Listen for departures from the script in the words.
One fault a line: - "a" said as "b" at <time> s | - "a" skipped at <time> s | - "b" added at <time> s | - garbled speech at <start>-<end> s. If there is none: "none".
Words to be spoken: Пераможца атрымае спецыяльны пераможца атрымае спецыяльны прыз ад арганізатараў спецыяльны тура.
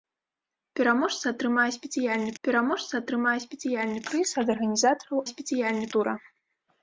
none